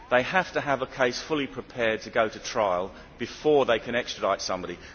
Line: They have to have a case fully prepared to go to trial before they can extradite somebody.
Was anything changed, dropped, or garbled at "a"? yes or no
no